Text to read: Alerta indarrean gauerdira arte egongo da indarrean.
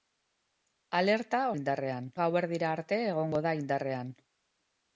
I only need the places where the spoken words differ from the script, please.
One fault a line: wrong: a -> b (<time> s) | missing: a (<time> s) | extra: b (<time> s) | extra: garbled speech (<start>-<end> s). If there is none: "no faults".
no faults